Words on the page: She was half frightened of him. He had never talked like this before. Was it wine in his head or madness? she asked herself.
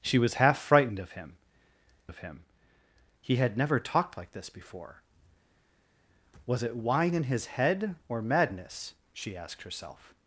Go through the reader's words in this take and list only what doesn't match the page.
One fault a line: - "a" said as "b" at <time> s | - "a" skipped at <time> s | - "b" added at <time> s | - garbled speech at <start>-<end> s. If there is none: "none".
- "of him" added at 2.1 s